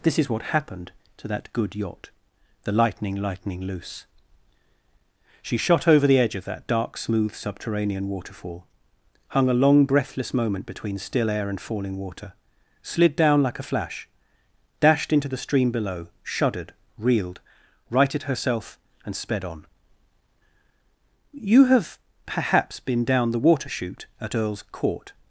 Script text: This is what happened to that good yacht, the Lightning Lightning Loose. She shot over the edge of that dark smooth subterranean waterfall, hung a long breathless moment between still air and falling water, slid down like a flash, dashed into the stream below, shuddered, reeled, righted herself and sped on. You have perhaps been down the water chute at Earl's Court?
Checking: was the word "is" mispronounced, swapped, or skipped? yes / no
no